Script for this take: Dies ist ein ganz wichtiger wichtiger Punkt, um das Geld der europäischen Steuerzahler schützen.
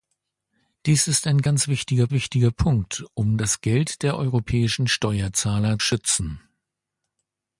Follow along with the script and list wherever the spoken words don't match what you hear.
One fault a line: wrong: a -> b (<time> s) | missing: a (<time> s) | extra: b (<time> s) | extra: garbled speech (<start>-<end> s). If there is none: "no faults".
no faults